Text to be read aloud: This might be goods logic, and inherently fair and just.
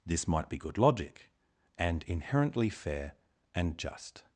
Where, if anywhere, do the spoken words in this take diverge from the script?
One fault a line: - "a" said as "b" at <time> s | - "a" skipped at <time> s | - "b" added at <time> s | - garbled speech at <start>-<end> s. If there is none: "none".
- "goods" said as "good" at 0.6 s